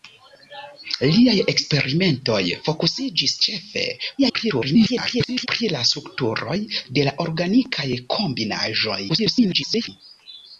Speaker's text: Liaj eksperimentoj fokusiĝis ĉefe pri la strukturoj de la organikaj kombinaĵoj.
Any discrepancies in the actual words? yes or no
yes